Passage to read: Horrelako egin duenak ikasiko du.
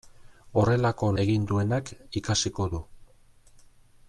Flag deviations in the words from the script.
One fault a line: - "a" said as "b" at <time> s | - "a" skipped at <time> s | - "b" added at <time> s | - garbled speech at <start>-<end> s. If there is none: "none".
none